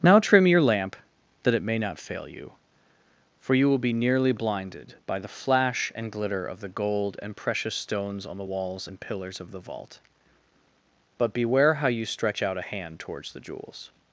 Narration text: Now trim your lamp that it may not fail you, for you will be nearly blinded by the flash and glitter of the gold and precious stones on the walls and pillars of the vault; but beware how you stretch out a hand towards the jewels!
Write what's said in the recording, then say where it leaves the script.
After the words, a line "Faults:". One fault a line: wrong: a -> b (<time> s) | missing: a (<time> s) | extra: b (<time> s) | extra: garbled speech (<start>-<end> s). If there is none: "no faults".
Now trim your lamp that it may not fail you, for you will be nearly blinded by the flash and glitter of the gold and precious stones on the walls and pillars of the vault; but beware how you stretch out a hand towards the jewels!
Faults:
no faults